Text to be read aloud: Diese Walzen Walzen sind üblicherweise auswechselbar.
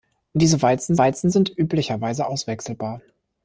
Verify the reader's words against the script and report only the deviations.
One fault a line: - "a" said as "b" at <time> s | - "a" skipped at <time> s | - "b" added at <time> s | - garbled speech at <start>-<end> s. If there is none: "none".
none